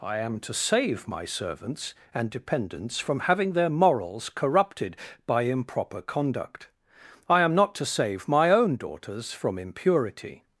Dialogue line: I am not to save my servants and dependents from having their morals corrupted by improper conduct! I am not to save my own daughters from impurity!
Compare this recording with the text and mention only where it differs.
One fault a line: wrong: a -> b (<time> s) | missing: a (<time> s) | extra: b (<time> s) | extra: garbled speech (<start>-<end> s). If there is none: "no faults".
missing: not (0.4 s)